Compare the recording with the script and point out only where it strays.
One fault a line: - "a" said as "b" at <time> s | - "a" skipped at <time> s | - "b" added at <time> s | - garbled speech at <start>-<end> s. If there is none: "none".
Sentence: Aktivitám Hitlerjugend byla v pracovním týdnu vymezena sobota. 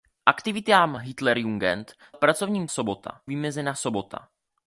- "byla" skipped at 1.9 s
- "týdnu" said as "sobota" at 2.7 s